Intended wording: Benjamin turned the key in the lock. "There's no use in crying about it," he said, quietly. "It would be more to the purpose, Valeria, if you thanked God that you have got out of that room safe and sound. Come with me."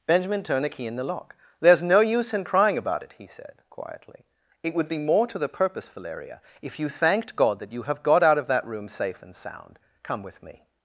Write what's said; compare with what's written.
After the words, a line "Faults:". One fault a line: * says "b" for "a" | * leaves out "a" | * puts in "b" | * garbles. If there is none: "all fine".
Benjamin turned the key in the lock. "There's no use in crying about it," he said, quietly. "It would be more to the purpose, Valeria, if you thanked God that you have got out of that room safe and sound. Come with me."
Faults:
all fine